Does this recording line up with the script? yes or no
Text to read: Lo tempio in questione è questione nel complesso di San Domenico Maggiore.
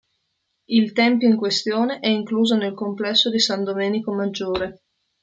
no